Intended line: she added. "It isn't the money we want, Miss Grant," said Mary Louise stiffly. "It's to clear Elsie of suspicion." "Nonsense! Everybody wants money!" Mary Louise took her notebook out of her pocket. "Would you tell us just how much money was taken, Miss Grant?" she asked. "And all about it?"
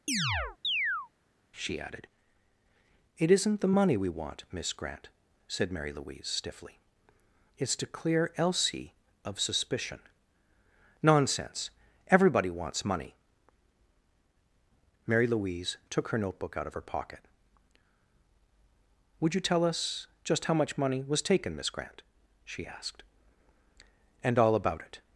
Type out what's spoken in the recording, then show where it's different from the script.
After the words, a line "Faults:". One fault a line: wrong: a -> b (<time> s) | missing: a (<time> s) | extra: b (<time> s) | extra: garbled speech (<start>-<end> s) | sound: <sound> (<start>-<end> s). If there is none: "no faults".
she added. "It isn't the money we want, Miss Grant," said Mary Louise stiffly. "It's to clear Elsie of suspicion." "Nonsense! Everybody wants money!" Mary Louise took her notebook out of her pocket. "Would you tell us just how much money was taken, Miss Grant?" she asked. "And all about it?"
Faults:
sound: chirp (0.1-1.1 s)